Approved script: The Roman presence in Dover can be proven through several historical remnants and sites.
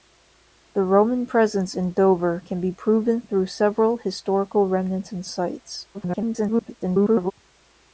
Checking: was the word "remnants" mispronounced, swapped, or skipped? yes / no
no